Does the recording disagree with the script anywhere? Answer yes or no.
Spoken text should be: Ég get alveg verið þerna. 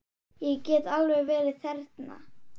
no